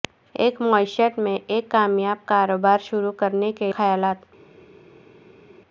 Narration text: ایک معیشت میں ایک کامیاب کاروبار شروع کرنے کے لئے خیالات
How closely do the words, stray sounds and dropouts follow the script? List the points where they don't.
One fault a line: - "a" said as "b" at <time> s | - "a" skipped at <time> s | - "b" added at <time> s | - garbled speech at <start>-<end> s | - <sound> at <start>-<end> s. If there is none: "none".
- "لئے" skipped at 3.7 s